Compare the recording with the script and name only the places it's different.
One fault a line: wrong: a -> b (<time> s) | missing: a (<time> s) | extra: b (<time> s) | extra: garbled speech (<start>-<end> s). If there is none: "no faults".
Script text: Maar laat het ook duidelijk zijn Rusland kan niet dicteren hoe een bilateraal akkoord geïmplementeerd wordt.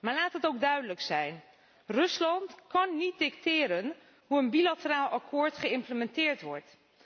no faults